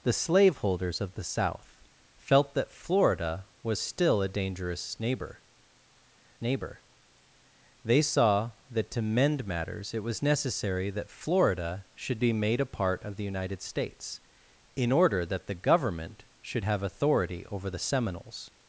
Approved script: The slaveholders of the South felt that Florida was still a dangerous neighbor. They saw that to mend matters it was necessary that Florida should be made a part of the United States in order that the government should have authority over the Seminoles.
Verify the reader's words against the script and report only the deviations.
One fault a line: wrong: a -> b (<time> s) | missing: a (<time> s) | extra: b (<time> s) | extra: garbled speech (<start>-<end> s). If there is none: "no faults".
extra: neighbor (6.4 s)